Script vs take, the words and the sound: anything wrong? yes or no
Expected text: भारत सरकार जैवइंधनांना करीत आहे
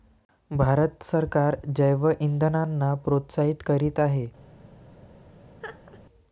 yes